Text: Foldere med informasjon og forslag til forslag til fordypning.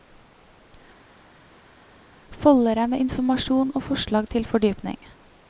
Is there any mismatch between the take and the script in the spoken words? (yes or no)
yes